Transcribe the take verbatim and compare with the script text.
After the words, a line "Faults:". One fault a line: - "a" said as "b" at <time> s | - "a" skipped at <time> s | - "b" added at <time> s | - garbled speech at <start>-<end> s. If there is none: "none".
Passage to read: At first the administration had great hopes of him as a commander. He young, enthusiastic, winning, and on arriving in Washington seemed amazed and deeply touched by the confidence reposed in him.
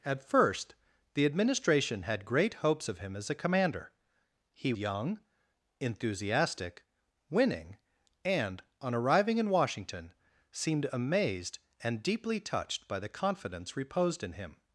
At first the administration had great hopes of him as a commander. He young, enthusiastic, winning, and on arriving in Washington seemed amazed and deeply touched by the confidence reposed in him.
Faults:
none